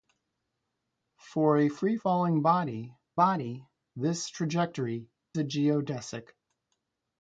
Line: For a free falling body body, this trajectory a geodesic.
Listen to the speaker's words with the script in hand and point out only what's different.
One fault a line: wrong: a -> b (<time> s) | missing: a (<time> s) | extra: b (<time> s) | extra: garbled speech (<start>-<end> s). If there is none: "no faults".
no faults